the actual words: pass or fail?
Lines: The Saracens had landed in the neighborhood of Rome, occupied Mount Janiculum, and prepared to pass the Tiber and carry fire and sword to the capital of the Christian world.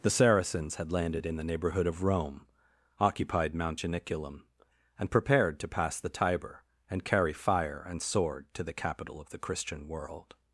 pass